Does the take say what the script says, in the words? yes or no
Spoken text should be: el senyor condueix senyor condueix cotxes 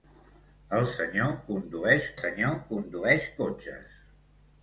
yes